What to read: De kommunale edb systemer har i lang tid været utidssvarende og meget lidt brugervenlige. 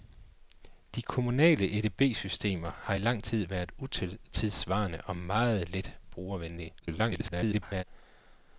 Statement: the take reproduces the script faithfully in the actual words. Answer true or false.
false